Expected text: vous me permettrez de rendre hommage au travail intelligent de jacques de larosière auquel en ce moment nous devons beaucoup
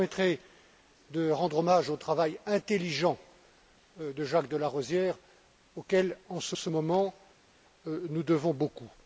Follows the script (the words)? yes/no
no